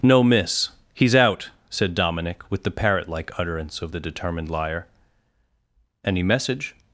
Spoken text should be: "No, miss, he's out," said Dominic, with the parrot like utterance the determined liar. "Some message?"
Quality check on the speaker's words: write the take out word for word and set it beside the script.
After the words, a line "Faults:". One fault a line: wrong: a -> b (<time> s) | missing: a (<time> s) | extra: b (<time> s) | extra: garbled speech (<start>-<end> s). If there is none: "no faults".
"No, miss, he's out," said Dominic, with the parrot like utterance of the determined liar. "Any message?"
Faults:
extra: of (3.8 s)
wrong: Some -> Any (6.1 s)